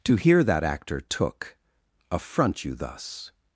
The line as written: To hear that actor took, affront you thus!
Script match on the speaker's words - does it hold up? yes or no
yes